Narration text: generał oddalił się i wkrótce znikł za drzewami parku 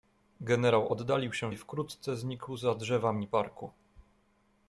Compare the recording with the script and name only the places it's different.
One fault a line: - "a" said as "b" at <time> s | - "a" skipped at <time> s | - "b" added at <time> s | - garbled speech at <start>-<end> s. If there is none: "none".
none